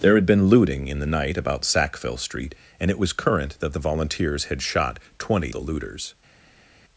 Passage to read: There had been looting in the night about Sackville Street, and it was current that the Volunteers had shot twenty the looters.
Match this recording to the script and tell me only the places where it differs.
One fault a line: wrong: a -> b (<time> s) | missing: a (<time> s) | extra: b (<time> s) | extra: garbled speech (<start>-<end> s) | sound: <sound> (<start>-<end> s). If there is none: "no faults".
no faults